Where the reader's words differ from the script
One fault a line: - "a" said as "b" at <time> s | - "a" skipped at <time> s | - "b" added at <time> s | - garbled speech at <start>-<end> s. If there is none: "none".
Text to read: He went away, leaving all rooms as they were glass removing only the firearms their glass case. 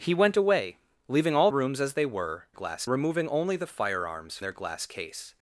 none